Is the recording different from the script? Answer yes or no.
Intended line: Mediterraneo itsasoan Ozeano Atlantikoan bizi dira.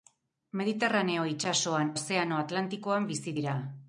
no